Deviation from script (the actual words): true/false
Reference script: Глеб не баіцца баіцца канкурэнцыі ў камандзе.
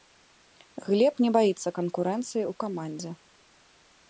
true